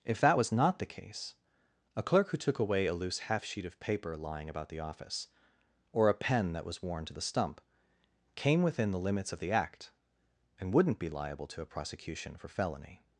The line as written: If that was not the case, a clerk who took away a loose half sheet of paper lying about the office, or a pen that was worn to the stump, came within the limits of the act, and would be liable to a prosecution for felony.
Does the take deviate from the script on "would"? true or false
true